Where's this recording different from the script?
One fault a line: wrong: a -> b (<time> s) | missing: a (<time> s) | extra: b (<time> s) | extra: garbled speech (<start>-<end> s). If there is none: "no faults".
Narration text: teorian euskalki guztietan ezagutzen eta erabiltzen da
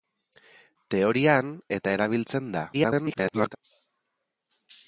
missing: euskalki guztietan ezagutzen (1.5 s)
extra: garbled speech (2.7-3.6 s)